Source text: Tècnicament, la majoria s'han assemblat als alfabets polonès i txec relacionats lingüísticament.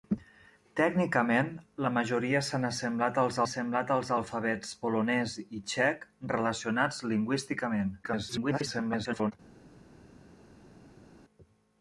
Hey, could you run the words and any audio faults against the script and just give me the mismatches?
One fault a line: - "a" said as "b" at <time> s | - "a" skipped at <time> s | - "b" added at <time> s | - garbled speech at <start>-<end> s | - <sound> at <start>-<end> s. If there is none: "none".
- "assemblat als" added at 3.5 s
- garbled speech at 8.0-9.3 s